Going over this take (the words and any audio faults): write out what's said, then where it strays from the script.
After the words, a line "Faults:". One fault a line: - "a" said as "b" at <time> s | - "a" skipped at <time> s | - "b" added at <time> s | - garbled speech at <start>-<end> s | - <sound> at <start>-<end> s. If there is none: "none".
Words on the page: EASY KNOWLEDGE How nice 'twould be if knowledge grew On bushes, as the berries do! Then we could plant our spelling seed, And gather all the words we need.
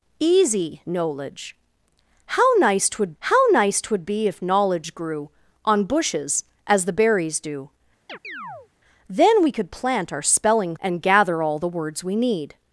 EASY KNOWLEDGE How nice 'twould How nice twould be if knowledge grew On bushes, as the berries do! Then we could plant our spelling And gather all the words we need.
Faults:
- "How nice twould" added at 3.2 s
- chirp at 8.1-8.7 s
- "seed" skipped at 10.7 s